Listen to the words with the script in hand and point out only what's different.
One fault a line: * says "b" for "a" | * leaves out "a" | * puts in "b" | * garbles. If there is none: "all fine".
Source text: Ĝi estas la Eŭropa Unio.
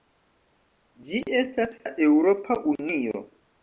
all fine